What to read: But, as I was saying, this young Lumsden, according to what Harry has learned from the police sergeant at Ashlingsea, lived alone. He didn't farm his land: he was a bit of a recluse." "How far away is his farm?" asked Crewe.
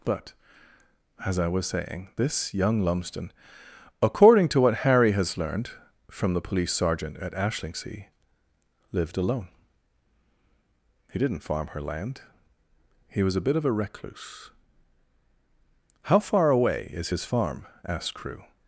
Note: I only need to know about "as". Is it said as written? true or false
true